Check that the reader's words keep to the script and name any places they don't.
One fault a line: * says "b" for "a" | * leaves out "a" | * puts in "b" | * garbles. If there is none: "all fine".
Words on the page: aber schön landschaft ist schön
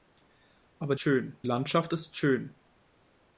all fine